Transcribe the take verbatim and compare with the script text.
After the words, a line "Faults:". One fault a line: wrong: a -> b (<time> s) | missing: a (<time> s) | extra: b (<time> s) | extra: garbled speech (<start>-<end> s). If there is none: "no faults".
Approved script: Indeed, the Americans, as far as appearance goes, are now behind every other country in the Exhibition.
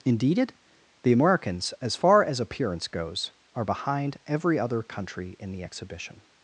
Indeed, the Americans, as far as appearance goes, are behind every other country in the Exhibition.
Faults:
missing: now (3.6 s)